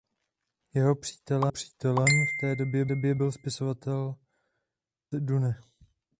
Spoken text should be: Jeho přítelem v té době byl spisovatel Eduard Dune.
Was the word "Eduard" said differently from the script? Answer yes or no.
yes